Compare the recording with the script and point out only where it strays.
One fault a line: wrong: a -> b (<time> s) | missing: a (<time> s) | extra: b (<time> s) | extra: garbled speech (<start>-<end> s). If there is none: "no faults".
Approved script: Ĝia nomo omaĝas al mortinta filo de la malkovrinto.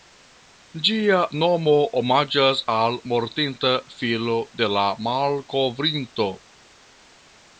no faults